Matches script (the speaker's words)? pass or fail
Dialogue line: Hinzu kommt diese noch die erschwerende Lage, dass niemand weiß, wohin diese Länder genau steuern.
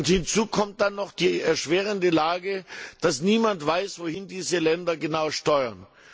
fail